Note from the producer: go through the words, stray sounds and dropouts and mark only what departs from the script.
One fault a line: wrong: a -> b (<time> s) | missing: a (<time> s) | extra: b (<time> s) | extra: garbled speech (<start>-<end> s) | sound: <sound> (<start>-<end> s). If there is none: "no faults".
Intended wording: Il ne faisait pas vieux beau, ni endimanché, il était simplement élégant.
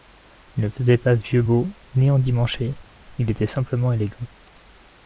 no faults